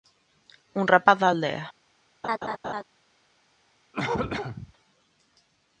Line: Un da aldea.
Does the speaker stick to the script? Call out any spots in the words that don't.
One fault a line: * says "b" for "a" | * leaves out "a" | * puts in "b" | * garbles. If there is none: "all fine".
* puts in "rapaz"